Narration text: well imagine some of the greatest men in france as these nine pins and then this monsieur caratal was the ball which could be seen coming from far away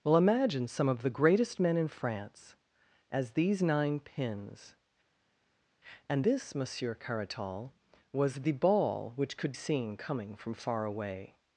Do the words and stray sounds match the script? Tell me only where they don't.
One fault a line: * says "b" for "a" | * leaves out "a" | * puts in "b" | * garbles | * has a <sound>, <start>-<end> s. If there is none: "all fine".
* leaves out "then"
* leaves out "be"